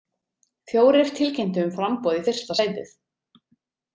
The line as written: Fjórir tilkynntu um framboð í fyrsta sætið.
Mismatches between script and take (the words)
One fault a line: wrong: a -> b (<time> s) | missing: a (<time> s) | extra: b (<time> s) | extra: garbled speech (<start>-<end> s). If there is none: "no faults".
no faults